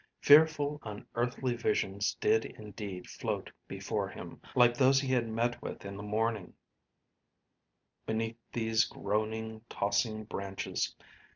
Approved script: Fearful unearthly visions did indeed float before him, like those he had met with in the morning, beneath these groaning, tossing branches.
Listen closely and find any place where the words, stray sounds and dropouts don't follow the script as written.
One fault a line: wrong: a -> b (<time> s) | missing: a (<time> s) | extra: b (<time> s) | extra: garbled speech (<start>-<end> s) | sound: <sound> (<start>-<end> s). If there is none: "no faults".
no faults